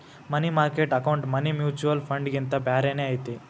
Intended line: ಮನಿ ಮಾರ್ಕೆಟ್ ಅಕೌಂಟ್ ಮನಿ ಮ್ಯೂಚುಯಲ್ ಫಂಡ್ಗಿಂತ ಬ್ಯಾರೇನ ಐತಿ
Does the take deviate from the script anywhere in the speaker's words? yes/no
no